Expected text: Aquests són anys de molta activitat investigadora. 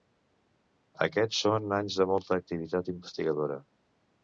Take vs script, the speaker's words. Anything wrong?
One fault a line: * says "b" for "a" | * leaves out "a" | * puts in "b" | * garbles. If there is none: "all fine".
all fine